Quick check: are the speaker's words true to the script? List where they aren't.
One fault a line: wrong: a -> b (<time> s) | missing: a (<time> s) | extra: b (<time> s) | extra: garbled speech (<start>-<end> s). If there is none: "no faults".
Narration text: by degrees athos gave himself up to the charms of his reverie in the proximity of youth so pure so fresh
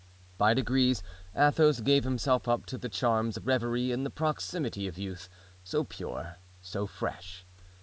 missing: his (3.4 s)